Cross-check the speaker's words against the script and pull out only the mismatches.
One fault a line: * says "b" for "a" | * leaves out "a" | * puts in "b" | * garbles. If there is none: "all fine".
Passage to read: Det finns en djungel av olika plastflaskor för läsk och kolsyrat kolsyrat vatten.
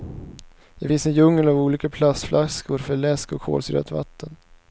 * leaves out "kolsyrat"